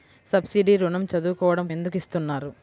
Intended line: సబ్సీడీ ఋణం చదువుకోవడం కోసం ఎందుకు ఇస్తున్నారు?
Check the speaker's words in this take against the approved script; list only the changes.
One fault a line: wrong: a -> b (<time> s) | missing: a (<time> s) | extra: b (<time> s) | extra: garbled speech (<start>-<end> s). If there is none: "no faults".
missing: కోసం (1.7 s)